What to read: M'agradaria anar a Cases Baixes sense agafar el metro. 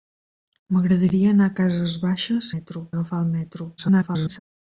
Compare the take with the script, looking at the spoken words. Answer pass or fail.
fail